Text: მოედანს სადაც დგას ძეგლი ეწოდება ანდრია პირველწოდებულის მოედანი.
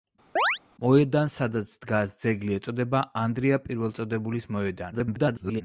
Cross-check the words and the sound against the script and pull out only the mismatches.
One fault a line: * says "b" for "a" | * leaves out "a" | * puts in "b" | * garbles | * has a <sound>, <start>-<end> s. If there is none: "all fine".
* has a chirp, 0.4-0.6 s
* garbles